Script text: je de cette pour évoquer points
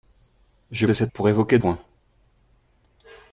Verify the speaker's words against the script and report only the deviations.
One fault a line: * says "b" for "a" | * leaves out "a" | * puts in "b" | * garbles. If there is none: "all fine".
all fine